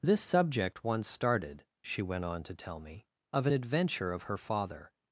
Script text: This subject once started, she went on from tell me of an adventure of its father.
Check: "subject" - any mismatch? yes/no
no